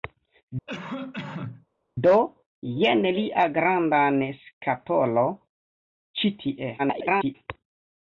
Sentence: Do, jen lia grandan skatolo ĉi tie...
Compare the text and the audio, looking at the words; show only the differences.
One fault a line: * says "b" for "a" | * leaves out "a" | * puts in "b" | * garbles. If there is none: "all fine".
* garbles